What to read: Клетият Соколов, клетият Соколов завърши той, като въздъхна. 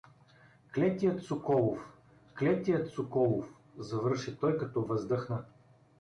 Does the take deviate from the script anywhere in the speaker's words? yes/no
no